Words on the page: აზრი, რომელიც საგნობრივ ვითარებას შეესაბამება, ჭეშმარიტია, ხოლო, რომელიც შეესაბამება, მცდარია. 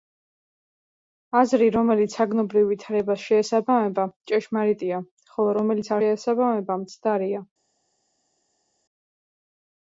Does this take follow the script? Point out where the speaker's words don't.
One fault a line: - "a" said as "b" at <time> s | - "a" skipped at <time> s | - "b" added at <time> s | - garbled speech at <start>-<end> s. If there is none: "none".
none